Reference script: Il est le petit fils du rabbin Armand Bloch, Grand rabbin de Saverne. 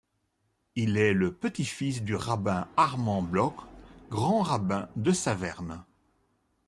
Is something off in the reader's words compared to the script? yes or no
no